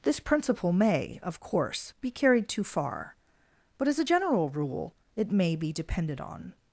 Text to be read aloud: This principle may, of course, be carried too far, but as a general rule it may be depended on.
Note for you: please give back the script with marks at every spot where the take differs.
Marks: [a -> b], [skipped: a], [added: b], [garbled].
This principle may, of course, be carried too far, but as a general rule it may be depended on.